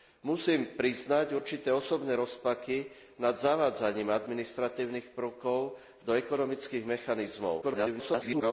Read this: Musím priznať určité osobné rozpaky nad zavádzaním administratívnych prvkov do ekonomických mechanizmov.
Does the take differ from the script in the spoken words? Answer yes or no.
yes